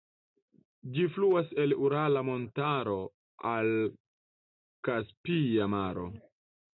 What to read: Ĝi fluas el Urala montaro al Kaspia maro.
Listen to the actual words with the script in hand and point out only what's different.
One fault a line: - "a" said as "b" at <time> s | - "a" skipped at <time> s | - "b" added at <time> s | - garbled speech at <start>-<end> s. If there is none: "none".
none